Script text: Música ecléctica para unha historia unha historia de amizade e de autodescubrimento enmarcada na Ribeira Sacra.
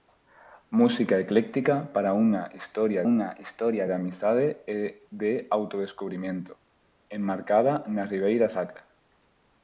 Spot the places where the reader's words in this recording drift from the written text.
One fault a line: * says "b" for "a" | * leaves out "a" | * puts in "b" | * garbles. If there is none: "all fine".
all fine